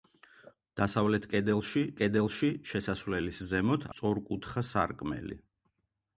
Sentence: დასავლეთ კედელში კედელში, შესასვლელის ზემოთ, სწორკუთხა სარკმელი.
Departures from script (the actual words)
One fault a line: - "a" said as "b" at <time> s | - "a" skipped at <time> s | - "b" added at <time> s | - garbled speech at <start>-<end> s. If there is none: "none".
none